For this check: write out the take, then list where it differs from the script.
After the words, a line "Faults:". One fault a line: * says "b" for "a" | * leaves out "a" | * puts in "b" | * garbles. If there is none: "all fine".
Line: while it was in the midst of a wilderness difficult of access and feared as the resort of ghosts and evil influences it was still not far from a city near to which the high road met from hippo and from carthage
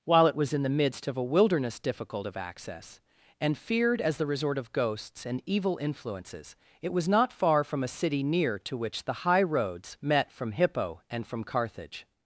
while it was in the midst of a wilderness difficult of access and feared as the resort of ghosts and evil influences it was not far from a city near to which the high roads met from hippo and from carthage
Faults:
* leaves out "still"
* says "roads" for "road"